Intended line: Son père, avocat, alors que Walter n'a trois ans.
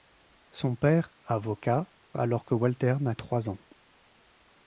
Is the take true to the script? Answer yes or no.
yes